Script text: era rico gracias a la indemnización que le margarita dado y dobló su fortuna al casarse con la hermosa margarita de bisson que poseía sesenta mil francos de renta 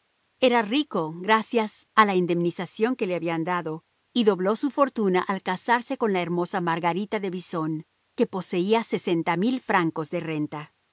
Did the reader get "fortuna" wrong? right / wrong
right